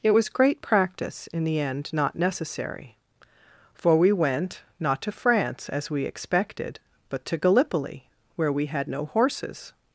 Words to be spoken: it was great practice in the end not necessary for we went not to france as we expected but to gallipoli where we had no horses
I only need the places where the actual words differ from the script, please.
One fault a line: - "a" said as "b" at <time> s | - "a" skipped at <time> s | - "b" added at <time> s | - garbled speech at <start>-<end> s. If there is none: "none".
none